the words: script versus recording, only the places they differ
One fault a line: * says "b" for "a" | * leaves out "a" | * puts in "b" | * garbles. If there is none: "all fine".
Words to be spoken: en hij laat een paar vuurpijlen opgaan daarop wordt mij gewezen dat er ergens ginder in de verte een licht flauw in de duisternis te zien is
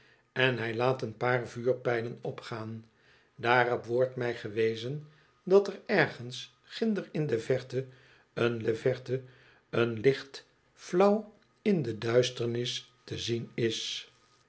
* puts in "de verte een"